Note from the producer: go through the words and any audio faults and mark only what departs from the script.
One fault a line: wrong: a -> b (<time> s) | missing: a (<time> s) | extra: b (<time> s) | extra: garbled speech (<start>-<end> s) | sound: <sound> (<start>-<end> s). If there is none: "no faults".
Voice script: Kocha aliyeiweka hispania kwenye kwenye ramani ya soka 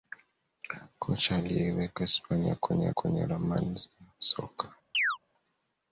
sound: chirp (4.9-5.2 s)